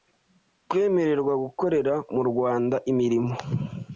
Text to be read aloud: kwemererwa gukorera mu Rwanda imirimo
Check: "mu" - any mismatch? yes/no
no